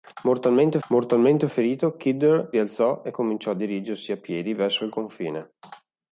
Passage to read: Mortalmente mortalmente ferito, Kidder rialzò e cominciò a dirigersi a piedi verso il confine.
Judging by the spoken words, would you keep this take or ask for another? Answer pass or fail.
pass